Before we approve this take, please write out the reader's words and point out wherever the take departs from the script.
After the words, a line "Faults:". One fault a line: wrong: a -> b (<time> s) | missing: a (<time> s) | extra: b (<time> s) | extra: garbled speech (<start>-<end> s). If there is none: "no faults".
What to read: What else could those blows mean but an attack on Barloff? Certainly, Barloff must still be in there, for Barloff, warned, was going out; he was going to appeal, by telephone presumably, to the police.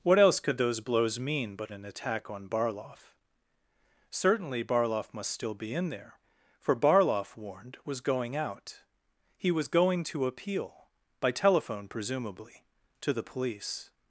What else could those blows mean but an attack on Barloff? Certainly, Barloff must still be in there, for Barloff, warned, was going out; he was going to appeal, by telephone presumably, to the police.
Faults:
no faults